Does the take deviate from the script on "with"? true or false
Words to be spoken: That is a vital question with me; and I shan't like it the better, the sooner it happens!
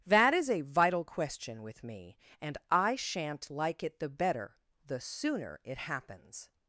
false